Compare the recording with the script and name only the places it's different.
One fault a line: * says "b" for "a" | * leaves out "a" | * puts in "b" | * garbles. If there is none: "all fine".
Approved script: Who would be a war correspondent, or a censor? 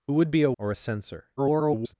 * leaves out "war correspondent"
* garbles